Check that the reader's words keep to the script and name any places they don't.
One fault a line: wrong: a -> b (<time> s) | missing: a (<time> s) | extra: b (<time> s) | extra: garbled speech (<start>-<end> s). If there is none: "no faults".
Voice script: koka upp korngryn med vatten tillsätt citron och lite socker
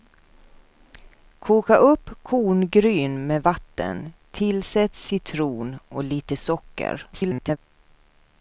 extra: garbled speech (7.1-7.6 s)